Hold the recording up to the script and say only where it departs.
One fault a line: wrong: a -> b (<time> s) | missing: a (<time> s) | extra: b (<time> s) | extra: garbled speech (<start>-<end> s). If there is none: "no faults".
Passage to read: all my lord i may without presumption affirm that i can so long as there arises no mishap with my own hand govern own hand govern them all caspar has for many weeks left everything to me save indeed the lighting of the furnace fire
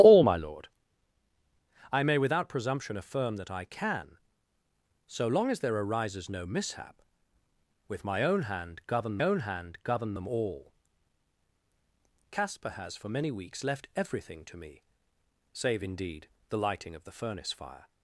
no faults